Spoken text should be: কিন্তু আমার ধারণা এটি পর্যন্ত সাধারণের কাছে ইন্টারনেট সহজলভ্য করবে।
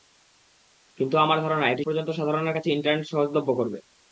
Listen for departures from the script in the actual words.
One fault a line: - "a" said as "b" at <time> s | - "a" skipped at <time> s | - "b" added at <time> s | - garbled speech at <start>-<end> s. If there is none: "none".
none